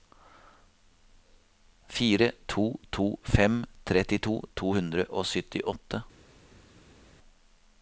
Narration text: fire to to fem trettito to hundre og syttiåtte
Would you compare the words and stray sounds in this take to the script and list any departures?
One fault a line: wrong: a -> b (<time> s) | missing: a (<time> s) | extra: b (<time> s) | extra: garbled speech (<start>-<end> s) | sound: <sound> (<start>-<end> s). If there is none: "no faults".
no faults